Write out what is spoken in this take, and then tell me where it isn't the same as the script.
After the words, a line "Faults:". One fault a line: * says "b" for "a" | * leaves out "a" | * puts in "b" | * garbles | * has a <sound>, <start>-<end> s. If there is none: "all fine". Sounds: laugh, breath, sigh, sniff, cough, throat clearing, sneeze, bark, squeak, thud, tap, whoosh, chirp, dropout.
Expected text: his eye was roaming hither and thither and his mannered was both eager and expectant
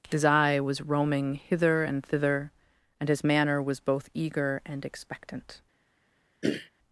his eye was roaming hither and thither and his manner was both eager and expectant
Faults:
* says "manner" for "mannered"
* has a throat clearing, 6.4-6.7 s